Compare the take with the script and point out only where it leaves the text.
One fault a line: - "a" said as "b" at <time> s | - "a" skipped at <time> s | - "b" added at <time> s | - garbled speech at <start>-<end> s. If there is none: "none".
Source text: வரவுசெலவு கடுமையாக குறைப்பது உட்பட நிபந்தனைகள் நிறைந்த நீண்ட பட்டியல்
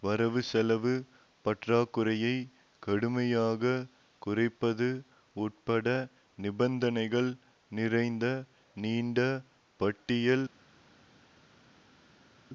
- "பற்றாக்குறையை" added at 1.4 s